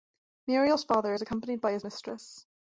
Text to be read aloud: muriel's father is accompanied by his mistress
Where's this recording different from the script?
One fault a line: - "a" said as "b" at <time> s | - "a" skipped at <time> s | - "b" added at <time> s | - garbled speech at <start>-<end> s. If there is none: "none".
none